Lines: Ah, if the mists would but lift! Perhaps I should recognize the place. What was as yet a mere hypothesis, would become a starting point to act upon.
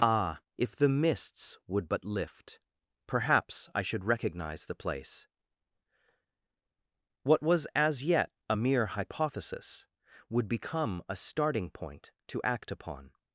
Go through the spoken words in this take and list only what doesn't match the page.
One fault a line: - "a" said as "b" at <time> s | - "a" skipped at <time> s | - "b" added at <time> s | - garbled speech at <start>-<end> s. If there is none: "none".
none